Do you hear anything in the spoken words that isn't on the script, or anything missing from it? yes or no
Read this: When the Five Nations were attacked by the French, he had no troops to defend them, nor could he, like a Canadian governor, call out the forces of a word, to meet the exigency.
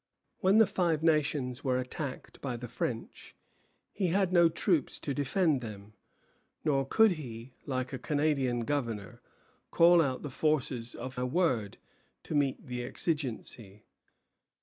no